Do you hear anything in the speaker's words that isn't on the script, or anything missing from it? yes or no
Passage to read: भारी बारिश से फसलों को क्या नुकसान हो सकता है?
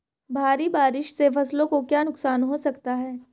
no